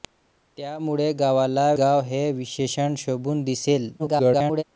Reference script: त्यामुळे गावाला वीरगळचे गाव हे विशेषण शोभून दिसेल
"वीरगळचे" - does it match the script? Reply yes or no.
no